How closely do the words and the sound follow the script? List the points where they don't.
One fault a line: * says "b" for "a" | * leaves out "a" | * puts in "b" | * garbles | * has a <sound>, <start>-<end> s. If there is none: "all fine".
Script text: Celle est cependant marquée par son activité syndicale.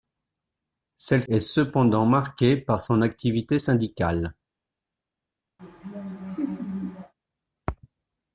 * has a laugh, 5.6-7.1 s